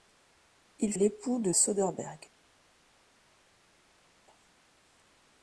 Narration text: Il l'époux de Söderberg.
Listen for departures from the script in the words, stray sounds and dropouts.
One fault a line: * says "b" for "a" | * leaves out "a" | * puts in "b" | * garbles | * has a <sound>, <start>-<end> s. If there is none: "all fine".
all fine